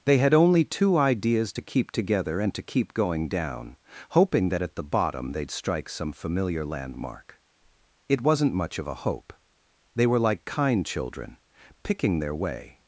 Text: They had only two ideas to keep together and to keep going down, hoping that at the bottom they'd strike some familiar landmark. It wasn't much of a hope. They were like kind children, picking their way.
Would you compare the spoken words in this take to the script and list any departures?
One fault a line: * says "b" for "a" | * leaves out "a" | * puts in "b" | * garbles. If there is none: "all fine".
all fine